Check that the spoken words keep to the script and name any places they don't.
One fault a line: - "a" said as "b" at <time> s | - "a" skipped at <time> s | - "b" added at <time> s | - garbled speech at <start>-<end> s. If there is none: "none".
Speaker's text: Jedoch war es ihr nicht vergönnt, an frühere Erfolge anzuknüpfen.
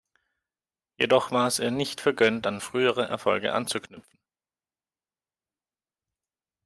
none